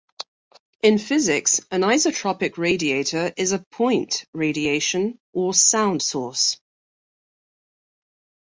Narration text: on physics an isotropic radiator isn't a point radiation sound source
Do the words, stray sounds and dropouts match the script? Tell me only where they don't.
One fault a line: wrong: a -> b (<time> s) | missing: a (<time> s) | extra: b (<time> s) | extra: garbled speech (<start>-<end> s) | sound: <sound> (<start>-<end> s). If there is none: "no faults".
wrong: on -> in (0.8 s)
wrong: isn't -> is (3.4 s)
extra: or (5.3 s)